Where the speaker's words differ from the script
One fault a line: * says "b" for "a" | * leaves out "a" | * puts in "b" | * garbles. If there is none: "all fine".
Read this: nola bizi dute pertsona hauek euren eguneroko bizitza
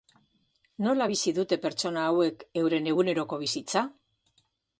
all fine